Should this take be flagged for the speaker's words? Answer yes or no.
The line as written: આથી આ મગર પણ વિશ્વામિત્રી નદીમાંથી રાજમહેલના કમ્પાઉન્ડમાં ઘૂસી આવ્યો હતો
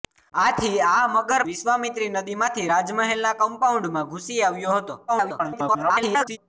yes